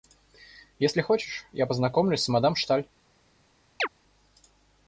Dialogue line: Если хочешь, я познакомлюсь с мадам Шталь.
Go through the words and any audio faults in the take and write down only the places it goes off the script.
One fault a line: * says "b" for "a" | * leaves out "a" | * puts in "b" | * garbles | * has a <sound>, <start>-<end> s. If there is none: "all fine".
* has a chirp, 3.8-3.9 s